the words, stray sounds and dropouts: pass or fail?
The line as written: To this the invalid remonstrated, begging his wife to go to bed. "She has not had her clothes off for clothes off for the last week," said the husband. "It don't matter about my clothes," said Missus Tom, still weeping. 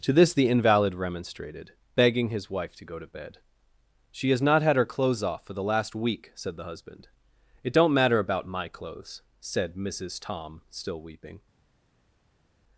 fail